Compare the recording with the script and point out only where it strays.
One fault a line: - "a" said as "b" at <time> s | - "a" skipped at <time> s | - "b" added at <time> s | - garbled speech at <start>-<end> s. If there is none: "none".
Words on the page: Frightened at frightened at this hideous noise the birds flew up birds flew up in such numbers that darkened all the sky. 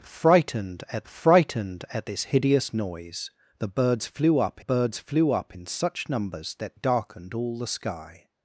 none